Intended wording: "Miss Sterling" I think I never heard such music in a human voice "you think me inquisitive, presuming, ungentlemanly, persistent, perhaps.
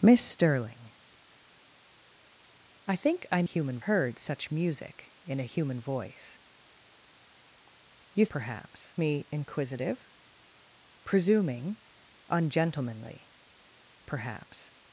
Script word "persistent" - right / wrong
wrong